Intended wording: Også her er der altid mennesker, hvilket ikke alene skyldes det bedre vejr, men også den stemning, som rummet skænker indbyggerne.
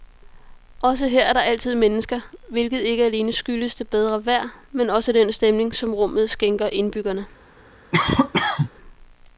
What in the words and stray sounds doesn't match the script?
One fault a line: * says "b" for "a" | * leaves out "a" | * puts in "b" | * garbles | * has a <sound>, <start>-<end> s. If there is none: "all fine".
* has a cough, 7.9-8.7 s